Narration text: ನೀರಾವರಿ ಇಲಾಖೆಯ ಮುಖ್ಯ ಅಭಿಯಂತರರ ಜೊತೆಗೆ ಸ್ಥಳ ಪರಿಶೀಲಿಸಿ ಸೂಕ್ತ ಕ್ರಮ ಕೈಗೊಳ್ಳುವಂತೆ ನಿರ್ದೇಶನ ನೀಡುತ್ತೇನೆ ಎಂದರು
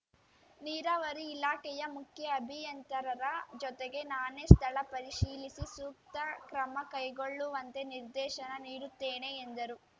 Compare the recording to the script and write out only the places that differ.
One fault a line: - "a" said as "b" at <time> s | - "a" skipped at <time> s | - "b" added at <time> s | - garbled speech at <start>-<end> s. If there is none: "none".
- "ನಾನೇ" added at 4.1 s